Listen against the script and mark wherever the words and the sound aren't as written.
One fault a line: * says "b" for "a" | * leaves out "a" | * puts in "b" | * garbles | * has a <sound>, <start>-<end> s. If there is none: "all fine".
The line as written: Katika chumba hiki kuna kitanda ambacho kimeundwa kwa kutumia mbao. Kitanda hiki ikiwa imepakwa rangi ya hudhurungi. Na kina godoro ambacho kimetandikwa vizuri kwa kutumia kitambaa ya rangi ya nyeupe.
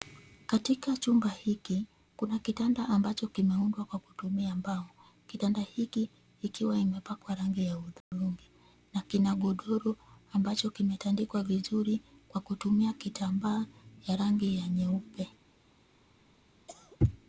* has a dropout, 8.0-8.1 s
* has a cough, 16.7-17.0 s